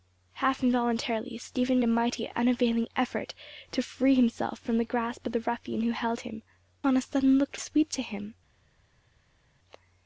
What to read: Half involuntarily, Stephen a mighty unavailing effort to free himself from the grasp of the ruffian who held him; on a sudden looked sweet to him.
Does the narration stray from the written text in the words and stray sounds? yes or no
no